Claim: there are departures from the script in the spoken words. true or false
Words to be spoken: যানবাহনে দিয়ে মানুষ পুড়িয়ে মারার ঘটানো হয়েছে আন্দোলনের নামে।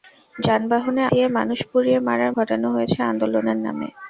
false